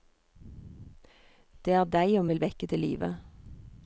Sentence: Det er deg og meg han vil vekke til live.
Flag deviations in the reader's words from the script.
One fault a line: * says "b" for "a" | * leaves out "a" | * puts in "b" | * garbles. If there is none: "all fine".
* leaves out "meg han"